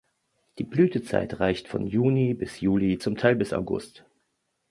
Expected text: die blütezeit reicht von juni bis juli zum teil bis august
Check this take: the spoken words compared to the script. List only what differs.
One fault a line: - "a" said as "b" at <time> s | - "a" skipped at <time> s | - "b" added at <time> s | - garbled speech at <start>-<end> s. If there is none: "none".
none